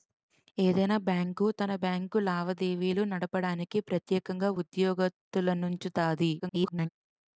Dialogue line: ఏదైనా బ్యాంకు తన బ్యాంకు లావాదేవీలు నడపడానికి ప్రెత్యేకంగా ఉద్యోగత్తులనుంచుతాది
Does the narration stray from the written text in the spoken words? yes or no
yes